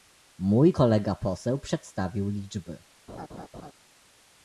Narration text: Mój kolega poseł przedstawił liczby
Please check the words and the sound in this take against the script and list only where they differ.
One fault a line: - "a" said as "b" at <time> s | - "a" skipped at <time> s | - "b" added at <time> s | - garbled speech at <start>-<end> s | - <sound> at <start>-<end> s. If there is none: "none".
- laugh at 3.1-3.7 s